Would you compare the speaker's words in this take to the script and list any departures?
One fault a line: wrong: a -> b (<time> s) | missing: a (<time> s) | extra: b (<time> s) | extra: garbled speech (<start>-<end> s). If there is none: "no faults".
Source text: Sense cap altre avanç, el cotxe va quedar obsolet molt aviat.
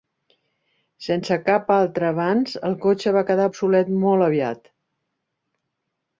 no faults